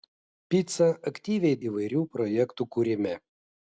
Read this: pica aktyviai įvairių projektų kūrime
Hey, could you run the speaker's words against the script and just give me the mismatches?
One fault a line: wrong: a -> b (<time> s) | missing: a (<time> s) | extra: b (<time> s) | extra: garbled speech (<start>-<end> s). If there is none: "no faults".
no faults